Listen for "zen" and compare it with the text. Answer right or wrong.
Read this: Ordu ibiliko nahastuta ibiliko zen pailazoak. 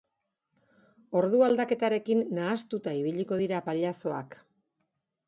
wrong